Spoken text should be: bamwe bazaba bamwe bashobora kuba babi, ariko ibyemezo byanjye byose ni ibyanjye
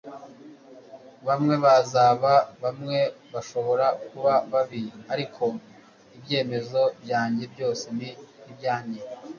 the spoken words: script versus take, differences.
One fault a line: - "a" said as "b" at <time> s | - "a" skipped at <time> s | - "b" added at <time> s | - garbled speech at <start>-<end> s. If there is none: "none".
none